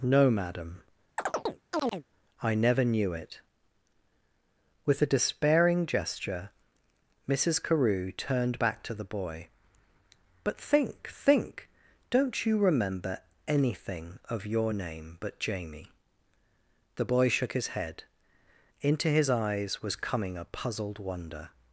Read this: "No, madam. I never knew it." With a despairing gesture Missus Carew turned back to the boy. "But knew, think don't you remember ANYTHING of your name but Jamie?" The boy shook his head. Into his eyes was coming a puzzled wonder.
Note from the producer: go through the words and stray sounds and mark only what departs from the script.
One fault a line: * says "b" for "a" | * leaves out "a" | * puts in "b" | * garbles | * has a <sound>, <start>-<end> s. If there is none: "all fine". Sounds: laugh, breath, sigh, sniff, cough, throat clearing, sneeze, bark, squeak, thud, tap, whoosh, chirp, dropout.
* has a chirp, 1.2-2.0 s
* says "think" for "knew"